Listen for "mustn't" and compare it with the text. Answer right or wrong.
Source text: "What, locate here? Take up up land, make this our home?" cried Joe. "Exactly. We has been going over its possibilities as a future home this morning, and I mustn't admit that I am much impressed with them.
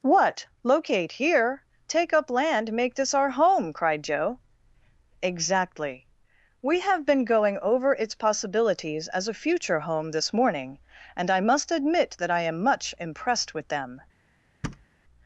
wrong